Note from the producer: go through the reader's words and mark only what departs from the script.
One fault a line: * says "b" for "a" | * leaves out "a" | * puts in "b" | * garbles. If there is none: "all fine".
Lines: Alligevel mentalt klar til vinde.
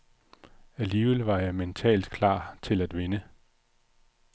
* puts in "var jeg"
* puts in "at"